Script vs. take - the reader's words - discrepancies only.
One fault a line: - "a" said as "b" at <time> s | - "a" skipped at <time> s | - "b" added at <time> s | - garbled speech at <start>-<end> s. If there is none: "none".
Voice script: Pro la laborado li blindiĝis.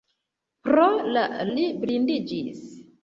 - "laborado" skipped at 1.2 s